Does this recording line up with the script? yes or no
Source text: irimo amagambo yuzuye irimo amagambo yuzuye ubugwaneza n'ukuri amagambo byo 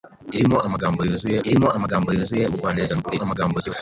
yes